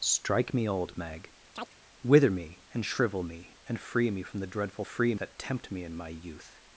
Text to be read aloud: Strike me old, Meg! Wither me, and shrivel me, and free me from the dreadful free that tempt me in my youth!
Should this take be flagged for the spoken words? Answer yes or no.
no